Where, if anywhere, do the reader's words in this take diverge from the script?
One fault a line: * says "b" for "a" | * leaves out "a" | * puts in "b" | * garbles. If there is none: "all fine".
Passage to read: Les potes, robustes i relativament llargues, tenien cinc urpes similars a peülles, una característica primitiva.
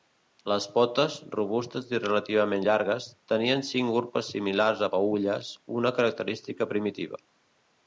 all fine